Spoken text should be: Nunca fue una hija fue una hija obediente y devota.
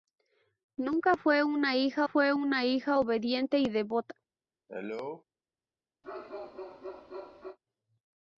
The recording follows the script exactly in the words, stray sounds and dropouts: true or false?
false